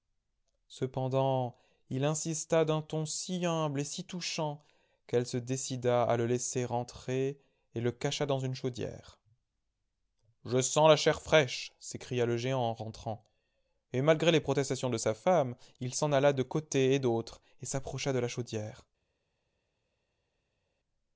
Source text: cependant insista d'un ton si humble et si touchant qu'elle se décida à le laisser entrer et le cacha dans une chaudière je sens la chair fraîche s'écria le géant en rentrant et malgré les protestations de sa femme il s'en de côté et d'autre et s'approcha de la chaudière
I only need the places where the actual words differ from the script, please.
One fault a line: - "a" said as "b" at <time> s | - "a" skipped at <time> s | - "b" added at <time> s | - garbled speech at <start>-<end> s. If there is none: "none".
- "il" added at 1.9 s
- "alla" added at 16.1 s